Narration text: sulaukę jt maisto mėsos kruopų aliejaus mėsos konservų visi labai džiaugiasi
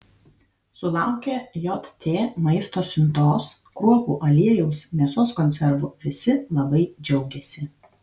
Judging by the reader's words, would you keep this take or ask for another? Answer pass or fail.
fail